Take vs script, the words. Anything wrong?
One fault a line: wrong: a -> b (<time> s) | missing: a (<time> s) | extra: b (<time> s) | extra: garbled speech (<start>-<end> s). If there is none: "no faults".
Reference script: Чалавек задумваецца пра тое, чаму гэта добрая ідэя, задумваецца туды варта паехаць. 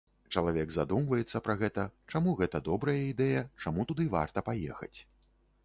wrong: тое -> гэта (1.6 s)
wrong: задумваецца -> чаму (3.6 s)